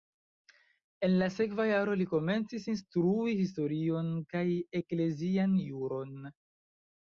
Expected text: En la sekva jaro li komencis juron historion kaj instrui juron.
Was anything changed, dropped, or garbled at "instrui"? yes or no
yes